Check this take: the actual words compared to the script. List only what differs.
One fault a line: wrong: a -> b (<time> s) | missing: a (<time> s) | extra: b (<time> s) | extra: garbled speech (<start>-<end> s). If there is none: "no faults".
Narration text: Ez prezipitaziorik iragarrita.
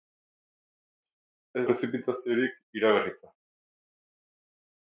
no faults